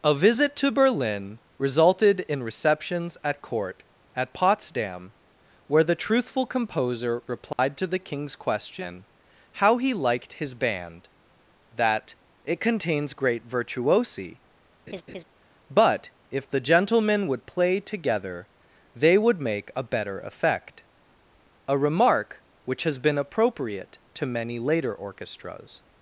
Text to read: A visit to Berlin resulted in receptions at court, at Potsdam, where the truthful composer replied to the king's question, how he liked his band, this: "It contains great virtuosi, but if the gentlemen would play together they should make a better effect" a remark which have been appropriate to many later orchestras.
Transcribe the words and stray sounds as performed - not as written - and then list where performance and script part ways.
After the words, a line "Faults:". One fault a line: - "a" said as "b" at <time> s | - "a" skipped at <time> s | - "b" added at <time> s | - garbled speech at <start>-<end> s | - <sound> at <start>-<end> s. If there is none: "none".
A visit to Berlin resulted in receptions at court, at Potsdam, where the truthful composer replied to the king's question, how he liked his band, that: "It contains great virtuosi, but if the gentlemen would play together they would make a better effect" a remark which has been appropriate to many later orchestras.
Faults:
- dropout at 7.5-7.6 s
- "this" said as "that" at 11.7 s
- laugh at 14.9-15.2 s
- "should" said as "would" at 19.2 s
- "have" said as "has" at 22.8 s